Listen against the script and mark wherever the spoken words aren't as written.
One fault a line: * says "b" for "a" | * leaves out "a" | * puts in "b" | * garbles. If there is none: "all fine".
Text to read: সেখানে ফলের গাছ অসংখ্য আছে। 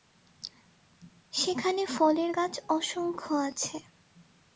all fine